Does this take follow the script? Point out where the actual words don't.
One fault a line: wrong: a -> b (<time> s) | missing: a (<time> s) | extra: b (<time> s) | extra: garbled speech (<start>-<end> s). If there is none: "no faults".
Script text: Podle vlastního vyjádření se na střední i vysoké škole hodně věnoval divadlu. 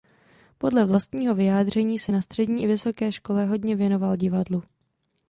no faults